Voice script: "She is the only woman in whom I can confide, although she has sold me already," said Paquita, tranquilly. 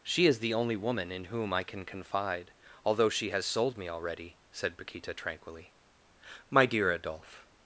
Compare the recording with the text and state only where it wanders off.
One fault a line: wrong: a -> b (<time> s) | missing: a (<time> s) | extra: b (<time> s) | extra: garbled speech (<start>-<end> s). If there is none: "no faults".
extra: My dear Adolphe (6.5 s)